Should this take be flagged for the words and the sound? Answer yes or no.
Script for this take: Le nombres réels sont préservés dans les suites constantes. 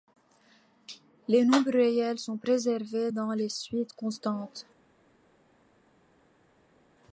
yes